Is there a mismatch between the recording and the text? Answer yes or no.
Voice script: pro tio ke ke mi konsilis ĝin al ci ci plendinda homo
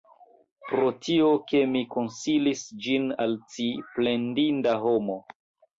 yes